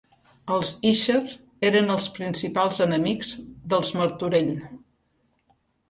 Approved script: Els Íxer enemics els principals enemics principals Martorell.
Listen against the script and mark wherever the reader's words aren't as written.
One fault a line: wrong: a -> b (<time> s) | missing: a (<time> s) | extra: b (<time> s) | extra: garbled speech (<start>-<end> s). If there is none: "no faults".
wrong: enemics -> eren (1.7 s)
wrong: principals -> dels (3.7 s)